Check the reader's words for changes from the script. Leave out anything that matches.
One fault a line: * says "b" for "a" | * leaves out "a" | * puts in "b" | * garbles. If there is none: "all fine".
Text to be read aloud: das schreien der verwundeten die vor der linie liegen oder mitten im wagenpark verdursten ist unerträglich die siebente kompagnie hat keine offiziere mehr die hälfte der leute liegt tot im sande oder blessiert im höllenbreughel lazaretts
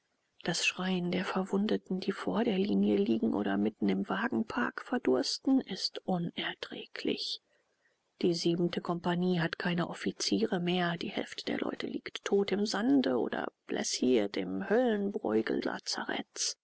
all fine